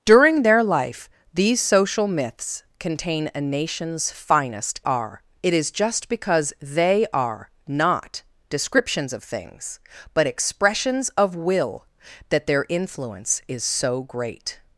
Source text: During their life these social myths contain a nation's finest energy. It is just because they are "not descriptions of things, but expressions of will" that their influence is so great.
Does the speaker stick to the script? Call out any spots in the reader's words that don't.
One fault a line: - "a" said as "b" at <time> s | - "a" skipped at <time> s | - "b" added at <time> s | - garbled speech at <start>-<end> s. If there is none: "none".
- "energy" said as "are" at 4.8 s